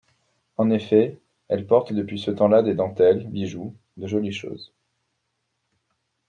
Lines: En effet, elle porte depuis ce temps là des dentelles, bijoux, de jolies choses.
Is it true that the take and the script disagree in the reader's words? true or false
false